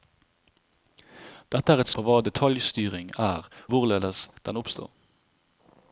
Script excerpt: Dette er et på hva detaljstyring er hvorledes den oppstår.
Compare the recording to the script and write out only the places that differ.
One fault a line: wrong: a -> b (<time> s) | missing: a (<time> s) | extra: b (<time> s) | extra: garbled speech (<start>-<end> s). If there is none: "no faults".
no faults